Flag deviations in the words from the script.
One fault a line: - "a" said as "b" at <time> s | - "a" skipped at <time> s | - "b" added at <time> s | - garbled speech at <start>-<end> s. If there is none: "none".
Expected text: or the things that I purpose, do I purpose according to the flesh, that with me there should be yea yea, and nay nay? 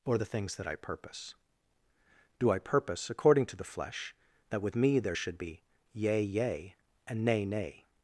none